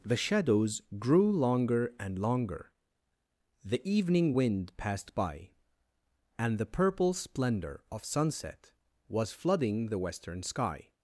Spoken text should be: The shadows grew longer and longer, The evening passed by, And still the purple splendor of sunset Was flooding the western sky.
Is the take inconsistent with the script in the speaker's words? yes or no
yes